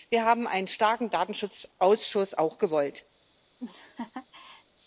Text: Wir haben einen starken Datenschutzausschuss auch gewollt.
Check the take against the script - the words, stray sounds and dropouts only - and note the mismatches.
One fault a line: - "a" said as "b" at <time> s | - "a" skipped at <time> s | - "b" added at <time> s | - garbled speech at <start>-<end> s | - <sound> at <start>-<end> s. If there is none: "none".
- laugh at 3.6-4.6 s